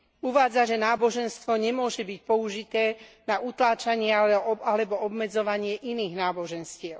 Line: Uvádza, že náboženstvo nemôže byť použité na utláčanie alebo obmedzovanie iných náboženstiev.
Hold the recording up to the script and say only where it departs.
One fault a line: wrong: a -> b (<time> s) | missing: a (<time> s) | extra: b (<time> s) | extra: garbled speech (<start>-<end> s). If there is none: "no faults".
no faults